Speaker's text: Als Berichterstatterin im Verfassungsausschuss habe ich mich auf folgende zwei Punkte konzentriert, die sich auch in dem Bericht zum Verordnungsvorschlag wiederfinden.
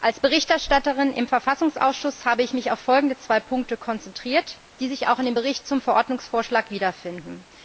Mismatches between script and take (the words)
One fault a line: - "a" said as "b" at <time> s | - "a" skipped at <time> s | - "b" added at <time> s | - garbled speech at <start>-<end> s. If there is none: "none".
none